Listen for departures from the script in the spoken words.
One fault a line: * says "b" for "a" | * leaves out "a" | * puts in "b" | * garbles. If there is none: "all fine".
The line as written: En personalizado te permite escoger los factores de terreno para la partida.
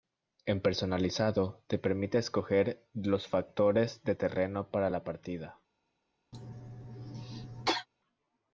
all fine